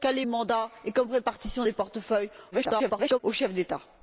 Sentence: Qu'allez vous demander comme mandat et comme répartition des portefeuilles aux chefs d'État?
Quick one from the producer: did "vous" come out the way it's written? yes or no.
no